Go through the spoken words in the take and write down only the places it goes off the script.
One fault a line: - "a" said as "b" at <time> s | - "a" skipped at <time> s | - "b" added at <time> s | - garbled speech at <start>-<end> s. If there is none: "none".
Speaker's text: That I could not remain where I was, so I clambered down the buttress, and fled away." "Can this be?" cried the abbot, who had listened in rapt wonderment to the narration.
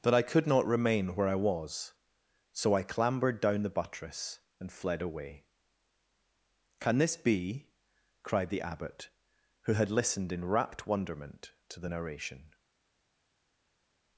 none